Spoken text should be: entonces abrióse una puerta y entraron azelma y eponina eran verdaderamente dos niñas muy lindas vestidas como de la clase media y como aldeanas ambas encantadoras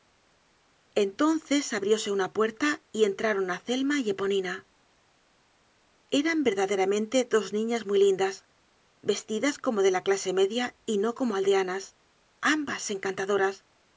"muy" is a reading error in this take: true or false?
false